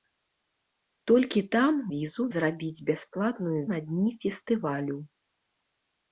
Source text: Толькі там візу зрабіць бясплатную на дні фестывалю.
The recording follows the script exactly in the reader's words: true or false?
true